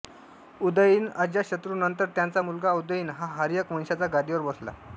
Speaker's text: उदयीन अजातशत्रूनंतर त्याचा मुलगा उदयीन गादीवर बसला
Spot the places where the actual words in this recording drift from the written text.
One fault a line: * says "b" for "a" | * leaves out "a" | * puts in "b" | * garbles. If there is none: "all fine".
* puts in "हा हर्यक वंशाच्या"